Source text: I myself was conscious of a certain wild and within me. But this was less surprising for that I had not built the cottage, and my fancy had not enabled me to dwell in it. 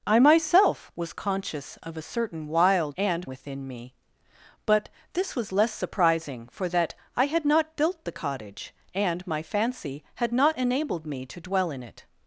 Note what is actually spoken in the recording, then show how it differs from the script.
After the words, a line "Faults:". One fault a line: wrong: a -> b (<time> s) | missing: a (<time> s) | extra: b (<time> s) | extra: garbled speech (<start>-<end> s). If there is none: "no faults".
I myself was conscious of a certain wild and within me. But this was less surprising for that I had not built the cottage, and my fancy had not enabled me to dwell in it.
Faults:
no faults